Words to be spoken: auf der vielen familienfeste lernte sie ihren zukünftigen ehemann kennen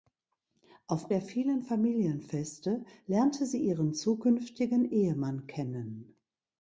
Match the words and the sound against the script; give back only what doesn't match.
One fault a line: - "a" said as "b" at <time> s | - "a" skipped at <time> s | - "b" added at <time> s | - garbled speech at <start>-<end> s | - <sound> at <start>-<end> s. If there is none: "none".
none